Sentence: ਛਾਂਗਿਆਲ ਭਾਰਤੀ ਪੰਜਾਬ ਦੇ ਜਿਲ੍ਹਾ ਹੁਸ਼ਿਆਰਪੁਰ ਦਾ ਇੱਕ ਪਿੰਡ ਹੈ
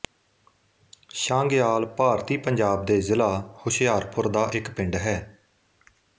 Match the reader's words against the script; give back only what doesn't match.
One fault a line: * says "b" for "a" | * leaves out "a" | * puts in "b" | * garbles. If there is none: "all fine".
all fine